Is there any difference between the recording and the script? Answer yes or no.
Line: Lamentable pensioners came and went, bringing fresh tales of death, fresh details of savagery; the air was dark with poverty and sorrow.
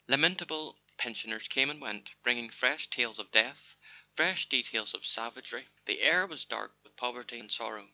no